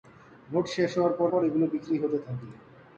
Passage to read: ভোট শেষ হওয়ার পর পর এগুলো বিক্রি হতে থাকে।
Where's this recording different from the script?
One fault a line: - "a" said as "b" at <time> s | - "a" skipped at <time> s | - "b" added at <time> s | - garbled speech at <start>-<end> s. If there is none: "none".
none